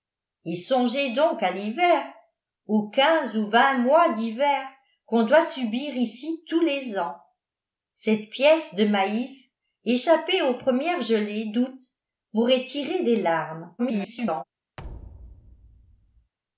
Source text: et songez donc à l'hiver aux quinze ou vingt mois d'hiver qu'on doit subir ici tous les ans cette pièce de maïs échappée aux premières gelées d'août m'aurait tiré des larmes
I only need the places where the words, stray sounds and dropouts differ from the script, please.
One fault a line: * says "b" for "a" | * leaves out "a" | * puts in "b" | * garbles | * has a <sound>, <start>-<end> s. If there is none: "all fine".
* garbles
* has a thud, 14.8-16.3 s